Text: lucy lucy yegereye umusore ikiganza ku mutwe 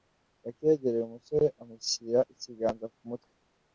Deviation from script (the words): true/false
true